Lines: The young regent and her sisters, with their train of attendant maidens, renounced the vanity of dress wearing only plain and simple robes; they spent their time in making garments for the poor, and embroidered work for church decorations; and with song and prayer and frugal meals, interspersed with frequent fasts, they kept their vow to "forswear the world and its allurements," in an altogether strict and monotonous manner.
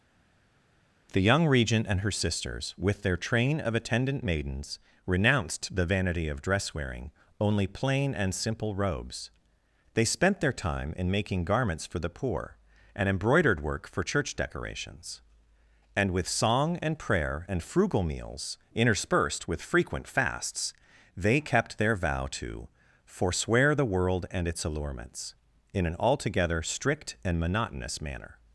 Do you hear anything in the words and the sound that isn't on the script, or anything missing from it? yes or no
no